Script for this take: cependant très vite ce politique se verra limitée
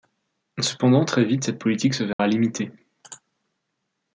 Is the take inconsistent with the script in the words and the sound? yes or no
yes